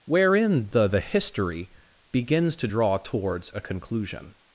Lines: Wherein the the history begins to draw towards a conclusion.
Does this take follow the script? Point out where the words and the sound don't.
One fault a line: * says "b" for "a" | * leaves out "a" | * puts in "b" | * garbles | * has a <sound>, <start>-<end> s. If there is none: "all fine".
all fine